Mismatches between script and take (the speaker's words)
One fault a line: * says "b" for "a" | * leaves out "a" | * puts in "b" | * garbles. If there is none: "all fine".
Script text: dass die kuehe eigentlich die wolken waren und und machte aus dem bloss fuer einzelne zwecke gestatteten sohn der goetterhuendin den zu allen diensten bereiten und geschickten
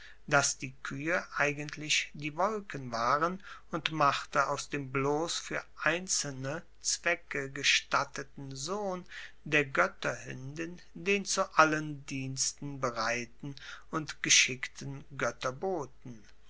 * leaves out "und"